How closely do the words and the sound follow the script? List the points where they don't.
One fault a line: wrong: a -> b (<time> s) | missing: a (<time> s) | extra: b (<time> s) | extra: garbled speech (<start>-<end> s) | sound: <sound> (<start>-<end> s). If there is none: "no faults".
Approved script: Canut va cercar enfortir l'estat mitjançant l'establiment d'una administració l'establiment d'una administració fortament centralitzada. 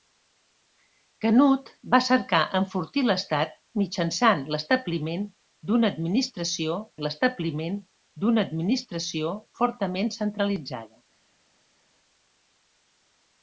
no faults